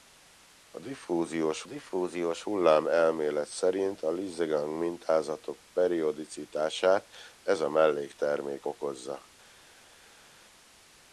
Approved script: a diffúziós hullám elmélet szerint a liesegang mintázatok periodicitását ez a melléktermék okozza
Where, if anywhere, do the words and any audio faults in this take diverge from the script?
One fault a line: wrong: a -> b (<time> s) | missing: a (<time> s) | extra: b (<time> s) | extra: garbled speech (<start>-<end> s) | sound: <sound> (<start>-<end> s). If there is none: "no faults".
extra: diffúziós (1.6 s)